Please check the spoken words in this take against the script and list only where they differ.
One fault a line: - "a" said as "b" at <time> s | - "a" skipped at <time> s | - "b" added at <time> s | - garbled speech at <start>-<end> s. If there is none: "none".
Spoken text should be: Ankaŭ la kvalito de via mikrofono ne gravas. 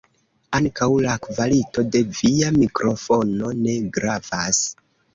none